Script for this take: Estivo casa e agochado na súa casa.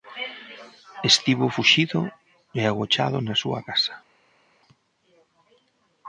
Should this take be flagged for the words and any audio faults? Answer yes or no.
yes